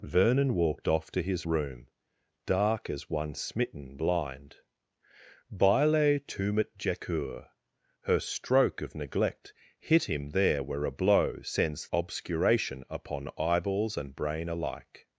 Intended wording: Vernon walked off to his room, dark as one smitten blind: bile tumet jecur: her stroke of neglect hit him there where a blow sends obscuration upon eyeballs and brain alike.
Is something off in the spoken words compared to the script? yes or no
no